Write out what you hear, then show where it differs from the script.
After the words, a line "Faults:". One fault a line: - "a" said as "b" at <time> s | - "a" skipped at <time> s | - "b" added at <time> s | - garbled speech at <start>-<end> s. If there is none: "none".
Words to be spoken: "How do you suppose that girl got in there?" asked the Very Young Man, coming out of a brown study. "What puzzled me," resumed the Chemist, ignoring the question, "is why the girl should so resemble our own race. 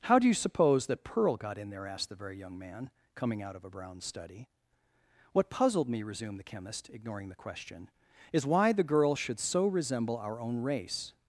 "How do you suppose that pearl got in there?" asked the Very Young Man, coming out of a brown study. "What puzzled me," resumed the Chemist, ignoring the question, "is why the girl should so resemble our own race.
Faults:
- "girl" said as "pearl" at 1.0 s